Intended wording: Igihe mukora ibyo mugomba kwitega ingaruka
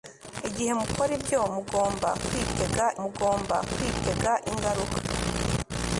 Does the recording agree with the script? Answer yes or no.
no